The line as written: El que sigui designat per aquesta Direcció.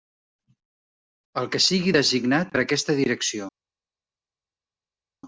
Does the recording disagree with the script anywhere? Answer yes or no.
no